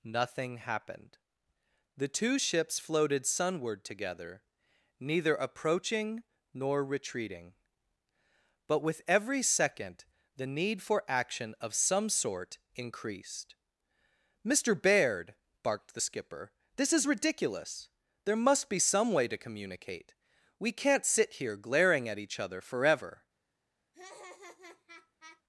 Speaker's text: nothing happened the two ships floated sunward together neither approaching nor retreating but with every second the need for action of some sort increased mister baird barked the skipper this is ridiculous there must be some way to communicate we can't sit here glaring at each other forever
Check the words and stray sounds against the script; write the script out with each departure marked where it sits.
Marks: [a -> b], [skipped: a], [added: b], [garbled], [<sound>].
nothing happened the two ships floated sunward together neither approaching nor retreating but with every second the need for action of some sort increased mister baird barked the skipper this is ridiculous there must be some way to communicate we can't sit here glaring at each other forever [laugh]